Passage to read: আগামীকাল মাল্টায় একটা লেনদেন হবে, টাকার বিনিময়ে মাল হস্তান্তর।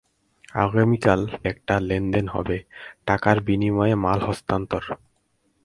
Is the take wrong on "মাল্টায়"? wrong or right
wrong